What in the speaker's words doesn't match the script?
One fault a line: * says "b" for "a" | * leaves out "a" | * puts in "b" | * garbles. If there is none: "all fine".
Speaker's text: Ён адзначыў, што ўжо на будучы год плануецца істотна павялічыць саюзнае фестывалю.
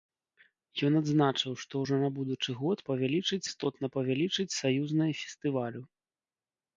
* says "павялічыць" for "плануецца"